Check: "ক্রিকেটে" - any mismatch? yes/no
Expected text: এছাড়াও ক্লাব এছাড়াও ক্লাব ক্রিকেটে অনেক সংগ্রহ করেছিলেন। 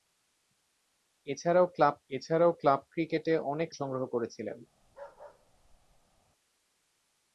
no